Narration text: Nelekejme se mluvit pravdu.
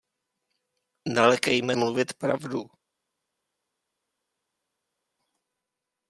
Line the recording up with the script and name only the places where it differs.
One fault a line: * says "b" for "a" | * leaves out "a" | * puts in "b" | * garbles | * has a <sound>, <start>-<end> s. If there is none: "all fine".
* leaves out "se"